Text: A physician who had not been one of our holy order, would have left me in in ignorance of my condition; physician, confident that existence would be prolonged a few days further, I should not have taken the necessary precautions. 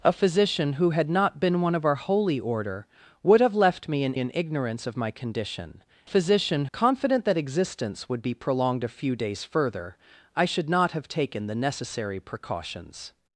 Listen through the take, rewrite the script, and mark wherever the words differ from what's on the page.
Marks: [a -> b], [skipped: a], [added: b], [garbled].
A physician who had not been one of our holy order, would have left me in in ignorance of my condition; physician, confident that existence would be prolonged a few days further, I should not have taken the necessary precautions.